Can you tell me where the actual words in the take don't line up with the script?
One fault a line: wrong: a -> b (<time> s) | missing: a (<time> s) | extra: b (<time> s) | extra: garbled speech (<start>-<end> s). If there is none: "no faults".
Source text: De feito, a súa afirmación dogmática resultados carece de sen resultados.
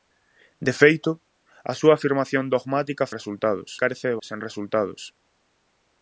no faults